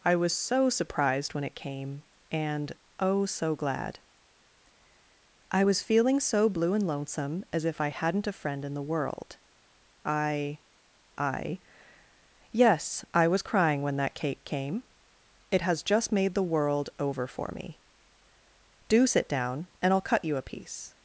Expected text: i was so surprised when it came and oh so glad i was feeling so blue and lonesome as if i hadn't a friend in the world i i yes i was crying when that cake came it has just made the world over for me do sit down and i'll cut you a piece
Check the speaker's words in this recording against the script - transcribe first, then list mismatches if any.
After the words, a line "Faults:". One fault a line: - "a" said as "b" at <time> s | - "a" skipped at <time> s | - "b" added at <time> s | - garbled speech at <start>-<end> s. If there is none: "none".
i was so surprised when it came and oh so glad i was feeling so blue and lonesome as if i hadn't a friend in the world i i yes i was crying when that cake came it has just made the world over for me do sit down and i'll cut you a piece
Faults:
none